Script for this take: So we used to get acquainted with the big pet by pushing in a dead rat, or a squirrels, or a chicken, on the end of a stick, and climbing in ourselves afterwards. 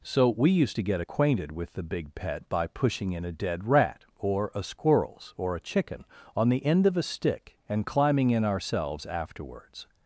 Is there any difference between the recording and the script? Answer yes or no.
no